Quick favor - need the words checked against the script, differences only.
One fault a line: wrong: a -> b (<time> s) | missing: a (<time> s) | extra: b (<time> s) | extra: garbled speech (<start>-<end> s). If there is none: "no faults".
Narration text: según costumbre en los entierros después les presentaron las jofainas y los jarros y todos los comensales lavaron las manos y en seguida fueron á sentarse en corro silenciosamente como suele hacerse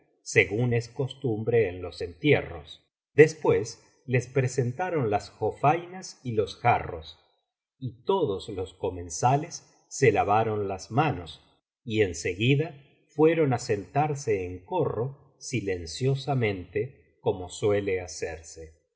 extra: es (0.7 s)
extra: se (9.9 s)